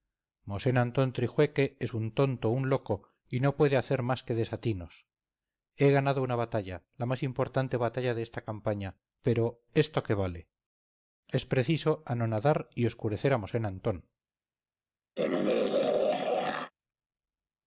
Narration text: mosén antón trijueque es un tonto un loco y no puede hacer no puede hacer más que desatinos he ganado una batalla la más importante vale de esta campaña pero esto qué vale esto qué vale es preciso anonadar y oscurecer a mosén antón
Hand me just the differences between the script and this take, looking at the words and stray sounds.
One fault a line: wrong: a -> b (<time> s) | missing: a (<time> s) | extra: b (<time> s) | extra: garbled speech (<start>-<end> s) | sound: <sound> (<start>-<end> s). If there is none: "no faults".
missing: no puede hacer (4.0 s)
wrong: vale -> batalla (7.8 s)
missing: esto qué vale (10.5 s)
sound: throat clearing (15.2-16.7 s)